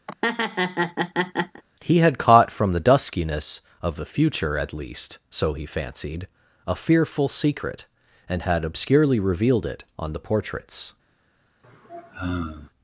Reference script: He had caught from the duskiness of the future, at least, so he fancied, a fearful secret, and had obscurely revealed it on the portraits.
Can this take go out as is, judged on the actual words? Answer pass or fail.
pass